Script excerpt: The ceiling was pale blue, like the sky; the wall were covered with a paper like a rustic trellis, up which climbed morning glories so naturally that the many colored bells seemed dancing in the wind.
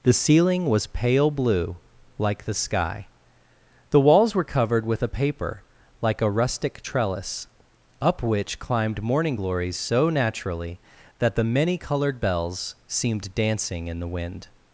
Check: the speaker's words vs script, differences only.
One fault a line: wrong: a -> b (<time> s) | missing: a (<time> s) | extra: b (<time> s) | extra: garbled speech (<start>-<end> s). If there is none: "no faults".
wrong: wall -> walls (4.0 s)